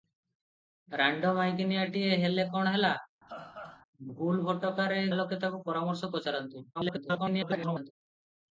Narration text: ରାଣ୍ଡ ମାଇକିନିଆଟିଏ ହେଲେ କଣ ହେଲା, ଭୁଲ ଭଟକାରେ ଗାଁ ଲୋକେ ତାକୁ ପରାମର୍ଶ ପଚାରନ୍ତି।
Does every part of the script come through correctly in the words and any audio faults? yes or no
no